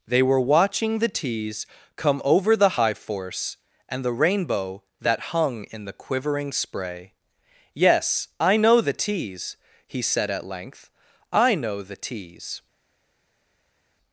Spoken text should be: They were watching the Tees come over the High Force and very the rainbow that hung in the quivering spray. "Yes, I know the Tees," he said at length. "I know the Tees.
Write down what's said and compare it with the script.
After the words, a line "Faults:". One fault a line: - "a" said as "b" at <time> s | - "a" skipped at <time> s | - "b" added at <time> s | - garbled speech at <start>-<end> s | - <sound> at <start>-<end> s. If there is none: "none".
They were watching the Tees come over the High Force and the rainbow that hung in the quivering spray. "Yes, I know the Tees," he said at length. "I know the Tees.
Faults:
- "very" skipped at 4.0 s